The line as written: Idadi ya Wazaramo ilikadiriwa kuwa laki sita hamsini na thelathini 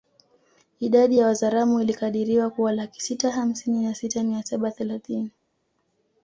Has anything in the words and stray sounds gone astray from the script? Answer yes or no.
yes